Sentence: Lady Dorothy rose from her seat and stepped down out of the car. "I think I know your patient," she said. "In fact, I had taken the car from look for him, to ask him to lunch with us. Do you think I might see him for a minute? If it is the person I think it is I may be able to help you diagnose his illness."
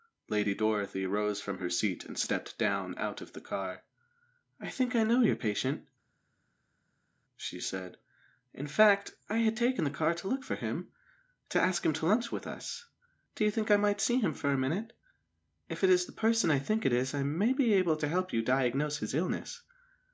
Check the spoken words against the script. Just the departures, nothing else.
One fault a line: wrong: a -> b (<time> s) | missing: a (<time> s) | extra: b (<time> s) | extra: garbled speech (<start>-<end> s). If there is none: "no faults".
wrong: from -> to (10.1 s)